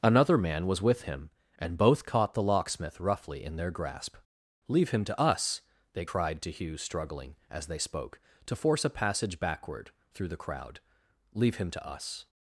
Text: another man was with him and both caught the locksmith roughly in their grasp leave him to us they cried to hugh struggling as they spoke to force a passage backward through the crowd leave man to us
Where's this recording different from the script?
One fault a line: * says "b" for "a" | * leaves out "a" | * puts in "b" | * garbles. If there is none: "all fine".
* says "him" for "man"